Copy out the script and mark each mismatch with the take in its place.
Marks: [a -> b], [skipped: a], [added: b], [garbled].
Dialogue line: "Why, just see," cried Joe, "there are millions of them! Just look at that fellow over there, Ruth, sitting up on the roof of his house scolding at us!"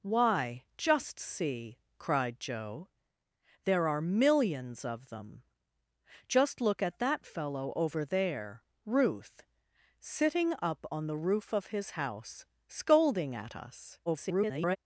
"Why, just see," cried Joe, "there are millions of them! Just look at that fellow over there, Ruth, sitting up on the roof of his house scolding at us!" [garbled]